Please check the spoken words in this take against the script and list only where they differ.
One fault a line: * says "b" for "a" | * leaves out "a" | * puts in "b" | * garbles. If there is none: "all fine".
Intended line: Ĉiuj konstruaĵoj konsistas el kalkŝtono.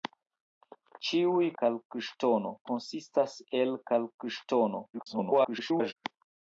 * says "kalkŝtono" for "konstruaĵoj"
* garbles